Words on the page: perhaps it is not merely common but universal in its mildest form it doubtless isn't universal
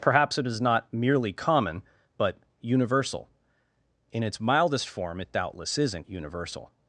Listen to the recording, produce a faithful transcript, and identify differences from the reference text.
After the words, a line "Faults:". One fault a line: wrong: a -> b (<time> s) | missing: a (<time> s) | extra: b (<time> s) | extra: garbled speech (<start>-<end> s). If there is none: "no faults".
perhaps it is not merely common but universal in its mildest form it doubtless isn't universal
Faults:
no faults